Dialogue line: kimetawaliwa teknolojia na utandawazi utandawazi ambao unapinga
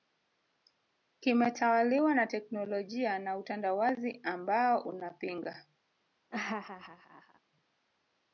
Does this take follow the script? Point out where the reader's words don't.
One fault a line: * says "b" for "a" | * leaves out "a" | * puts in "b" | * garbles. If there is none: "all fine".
* puts in "na"
* leaves out "utandawazi"